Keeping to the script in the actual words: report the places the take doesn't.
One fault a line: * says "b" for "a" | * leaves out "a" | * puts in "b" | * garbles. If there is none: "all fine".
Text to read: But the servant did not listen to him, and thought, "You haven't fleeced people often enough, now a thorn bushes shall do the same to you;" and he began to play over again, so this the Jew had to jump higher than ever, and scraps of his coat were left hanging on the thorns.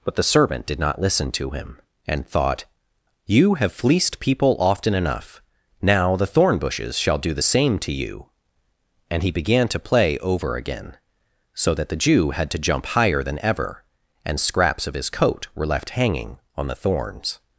* says "have" for "haven't"
* says "the" for "a"
* says "that" for "this"